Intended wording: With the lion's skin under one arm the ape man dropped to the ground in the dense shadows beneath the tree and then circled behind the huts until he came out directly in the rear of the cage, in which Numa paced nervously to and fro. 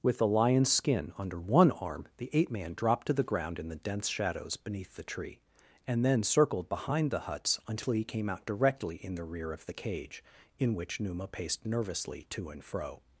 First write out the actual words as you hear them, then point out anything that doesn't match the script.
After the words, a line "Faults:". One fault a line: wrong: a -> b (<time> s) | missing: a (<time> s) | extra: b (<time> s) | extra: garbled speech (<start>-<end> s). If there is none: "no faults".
With the lion's skin under one arm the ape man dropped to the ground in the dense shadows beneath the tree and then circled behind the huts until he came out directly in the rear of the cage, in which Numa paced nervously to and fro.
Faults:
no faults